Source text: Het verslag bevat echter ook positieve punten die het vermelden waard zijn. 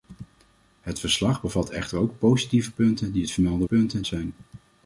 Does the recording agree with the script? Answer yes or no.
no